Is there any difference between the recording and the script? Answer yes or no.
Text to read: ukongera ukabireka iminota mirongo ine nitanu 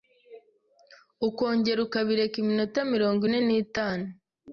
no